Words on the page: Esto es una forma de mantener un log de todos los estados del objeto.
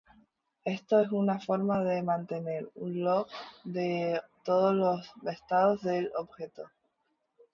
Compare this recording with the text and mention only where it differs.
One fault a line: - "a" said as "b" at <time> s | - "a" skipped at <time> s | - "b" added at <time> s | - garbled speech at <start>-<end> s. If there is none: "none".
none